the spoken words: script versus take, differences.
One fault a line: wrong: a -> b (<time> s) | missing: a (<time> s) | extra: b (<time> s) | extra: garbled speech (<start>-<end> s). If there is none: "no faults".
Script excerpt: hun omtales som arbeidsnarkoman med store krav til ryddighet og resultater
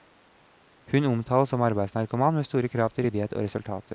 no faults